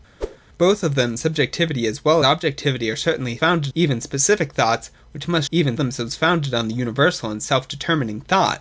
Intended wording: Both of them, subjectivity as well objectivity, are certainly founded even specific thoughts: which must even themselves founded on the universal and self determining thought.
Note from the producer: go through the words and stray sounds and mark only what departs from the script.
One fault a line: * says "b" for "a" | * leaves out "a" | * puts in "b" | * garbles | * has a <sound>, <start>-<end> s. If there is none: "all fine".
* has a whoosh, 0.2-0.4 s